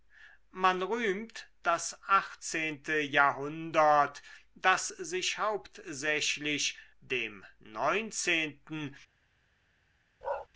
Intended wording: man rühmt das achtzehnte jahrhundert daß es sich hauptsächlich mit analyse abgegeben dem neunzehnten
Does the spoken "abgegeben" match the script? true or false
false